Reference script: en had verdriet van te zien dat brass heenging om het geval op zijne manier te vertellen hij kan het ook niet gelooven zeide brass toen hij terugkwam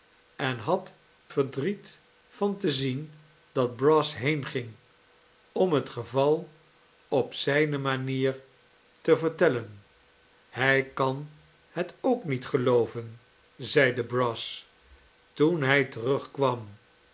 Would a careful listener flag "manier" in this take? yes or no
no